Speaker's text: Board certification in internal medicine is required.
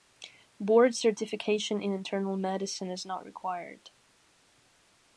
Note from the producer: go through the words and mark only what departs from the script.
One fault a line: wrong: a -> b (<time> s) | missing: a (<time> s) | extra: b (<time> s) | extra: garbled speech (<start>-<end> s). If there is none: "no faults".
extra: not (3.0 s)